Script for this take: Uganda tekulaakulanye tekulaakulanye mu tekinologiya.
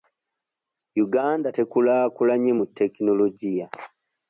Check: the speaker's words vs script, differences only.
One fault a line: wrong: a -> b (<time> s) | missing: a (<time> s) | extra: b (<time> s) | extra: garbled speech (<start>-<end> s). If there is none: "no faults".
missing: tekulaakulanye (2.5 s)